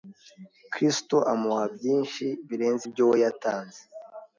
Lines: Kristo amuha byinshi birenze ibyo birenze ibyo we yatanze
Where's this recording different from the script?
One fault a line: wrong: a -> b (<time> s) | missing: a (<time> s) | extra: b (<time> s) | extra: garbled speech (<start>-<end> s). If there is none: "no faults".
missing: birenze ibyo (3.0 s)